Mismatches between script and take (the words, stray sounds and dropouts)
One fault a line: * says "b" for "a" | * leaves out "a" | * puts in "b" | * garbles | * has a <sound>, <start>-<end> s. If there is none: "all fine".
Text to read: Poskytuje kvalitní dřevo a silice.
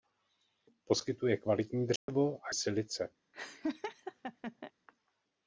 * has a dropout, 2.0-2.1 s
* has a laugh, 3.3-4.7 s